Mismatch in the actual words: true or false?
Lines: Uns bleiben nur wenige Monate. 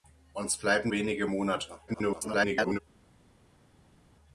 true